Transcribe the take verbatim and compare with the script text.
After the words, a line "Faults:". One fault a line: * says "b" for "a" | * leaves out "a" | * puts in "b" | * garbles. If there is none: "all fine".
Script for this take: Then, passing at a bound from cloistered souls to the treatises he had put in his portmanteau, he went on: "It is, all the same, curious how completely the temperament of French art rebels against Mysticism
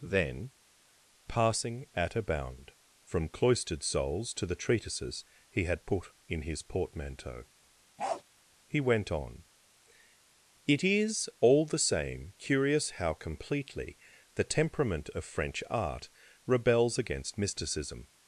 Then, passing at a bound from cloistered souls to the treatises he had put in his portmanteau, he went on: "It is, all the same, curious how completely the temperament of French art rebels against Mysticism
Faults:
all fine